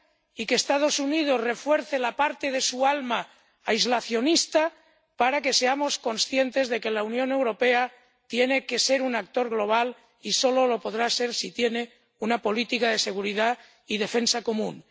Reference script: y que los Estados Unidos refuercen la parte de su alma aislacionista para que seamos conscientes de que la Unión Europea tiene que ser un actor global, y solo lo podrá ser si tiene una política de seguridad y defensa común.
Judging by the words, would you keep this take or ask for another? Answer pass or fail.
pass